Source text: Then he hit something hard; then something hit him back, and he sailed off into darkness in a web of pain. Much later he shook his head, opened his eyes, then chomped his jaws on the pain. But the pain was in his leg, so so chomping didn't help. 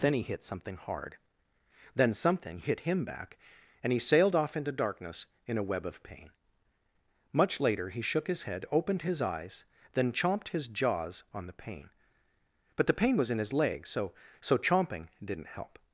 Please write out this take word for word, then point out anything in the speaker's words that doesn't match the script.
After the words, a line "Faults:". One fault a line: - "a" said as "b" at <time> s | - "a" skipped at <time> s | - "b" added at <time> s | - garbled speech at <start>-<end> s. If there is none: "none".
Then he hit something hard; then something hit him back, and he sailed off into darkness in a web of pain. Much later he shook his head, opened his eyes, then chomped his jaws on the pain. But the pain was in his leg, so so chomping didn't help.
Faults:
none